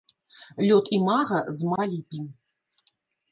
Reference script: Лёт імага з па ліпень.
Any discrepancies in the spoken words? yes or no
no